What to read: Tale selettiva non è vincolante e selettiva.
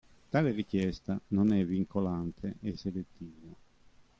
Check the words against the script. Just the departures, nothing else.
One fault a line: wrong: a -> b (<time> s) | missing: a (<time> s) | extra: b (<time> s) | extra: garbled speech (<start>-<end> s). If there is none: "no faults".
wrong: selettiva -> richiesta (0.5 s)